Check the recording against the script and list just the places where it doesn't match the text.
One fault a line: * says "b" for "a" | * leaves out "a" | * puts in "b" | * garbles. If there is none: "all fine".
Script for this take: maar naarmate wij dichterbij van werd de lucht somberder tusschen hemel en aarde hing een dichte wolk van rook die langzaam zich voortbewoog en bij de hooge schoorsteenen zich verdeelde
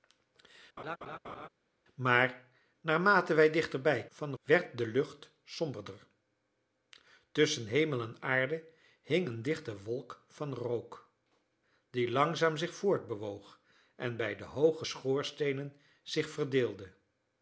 all fine